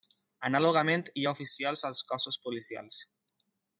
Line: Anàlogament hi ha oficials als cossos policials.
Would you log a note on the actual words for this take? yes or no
no